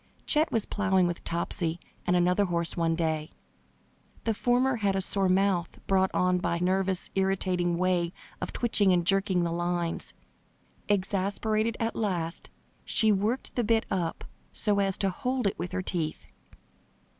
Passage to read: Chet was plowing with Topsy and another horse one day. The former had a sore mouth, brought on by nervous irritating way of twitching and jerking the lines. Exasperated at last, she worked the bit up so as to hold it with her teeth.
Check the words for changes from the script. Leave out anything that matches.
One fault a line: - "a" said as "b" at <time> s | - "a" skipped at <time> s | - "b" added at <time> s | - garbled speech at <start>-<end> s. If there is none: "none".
none